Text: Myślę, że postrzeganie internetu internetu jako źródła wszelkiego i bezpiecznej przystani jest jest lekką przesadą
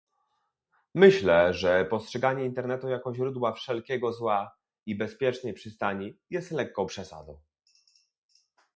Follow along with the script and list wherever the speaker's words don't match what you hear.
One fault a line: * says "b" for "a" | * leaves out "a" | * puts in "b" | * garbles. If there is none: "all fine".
* leaves out "internetu"
* puts in "zła"
* leaves out "jest"